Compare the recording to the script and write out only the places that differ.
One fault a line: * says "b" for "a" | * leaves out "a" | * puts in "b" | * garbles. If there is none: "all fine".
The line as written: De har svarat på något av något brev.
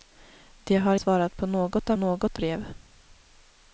all fine